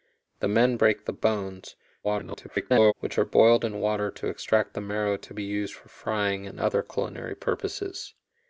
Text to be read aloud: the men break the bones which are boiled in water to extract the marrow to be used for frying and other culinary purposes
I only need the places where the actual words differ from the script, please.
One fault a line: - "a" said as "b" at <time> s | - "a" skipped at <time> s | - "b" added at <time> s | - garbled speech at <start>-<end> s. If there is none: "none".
- garbled speech at 2.0-2.9 s